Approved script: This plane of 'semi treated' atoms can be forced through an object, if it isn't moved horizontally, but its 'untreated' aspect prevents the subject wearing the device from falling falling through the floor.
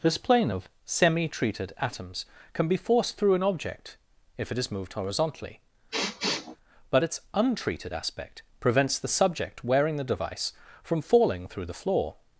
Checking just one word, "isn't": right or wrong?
wrong